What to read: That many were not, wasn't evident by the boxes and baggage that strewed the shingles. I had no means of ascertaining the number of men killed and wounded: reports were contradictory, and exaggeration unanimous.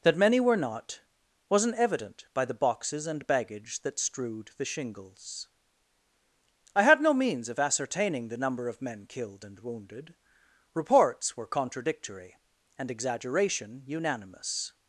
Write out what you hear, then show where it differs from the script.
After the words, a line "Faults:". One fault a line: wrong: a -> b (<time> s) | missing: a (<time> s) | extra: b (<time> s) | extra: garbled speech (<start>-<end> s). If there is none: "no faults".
That many were not, wasn't evident by the boxes and baggage that strewed the shingles. I had no means of ascertaining the number of men killed and wounded: reports were contradictory, and exaggeration unanimous.
Faults:
no faults